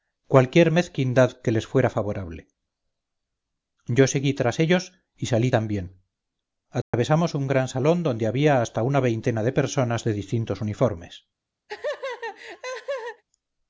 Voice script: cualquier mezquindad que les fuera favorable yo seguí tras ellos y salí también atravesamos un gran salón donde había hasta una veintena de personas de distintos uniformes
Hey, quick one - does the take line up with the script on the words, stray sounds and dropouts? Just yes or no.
no